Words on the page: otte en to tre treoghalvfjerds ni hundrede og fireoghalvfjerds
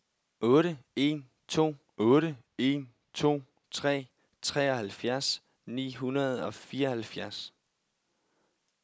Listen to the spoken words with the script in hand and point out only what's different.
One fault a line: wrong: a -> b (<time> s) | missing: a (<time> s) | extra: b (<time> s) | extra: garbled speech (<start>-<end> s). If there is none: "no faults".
extra: otte en to (2.0 s)